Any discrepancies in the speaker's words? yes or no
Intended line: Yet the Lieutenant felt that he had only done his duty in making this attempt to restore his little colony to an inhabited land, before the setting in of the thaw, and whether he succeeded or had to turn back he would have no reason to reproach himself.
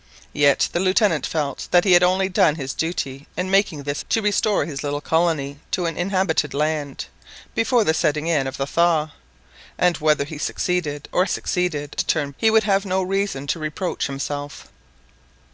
yes